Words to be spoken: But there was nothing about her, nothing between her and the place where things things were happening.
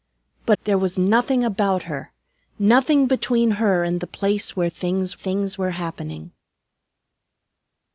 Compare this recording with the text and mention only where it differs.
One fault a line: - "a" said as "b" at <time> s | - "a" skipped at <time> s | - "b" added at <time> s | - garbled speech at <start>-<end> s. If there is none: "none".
none